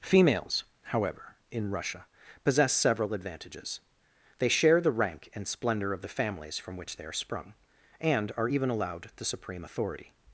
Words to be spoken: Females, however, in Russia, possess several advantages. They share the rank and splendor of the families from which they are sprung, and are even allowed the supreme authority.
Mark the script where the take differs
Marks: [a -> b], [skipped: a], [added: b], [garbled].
Females, however, in Russia, possess several advantages. They share the rank and splendor of the families from which they are sprung, and are even allowed the supreme authority.